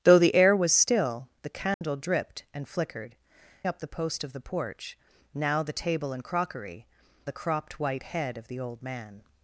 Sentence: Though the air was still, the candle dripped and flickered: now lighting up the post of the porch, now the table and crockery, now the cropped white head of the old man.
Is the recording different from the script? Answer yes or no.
yes